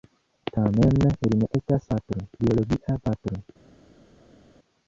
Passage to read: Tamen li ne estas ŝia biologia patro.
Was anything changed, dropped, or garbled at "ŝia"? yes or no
yes